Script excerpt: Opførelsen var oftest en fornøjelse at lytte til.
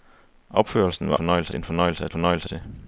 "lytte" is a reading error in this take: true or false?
true